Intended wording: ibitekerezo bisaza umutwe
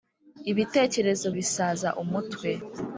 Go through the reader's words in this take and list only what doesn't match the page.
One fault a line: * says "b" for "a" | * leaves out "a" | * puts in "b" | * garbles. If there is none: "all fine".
all fine